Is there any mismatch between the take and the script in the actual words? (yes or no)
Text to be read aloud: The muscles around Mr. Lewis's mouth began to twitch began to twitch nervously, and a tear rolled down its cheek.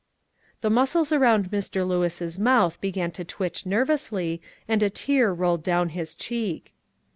yes